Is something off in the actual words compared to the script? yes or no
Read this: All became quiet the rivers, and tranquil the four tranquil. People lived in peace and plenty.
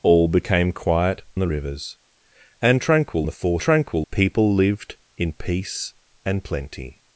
no